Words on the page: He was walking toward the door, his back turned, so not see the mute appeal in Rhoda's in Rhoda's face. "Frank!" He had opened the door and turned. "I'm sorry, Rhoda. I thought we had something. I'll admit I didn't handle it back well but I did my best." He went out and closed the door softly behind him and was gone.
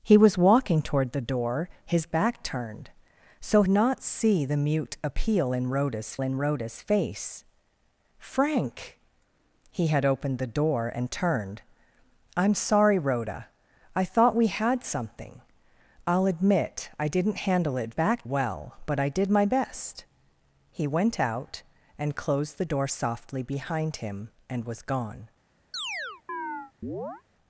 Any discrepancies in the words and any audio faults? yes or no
yes